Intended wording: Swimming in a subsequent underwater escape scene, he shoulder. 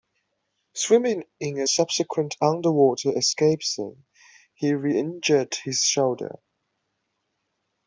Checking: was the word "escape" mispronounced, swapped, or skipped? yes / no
no